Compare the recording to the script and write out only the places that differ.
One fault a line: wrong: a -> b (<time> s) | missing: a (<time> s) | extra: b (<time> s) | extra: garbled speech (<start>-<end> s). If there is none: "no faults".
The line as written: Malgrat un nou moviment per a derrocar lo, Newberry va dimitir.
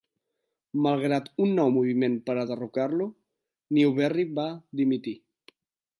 no faults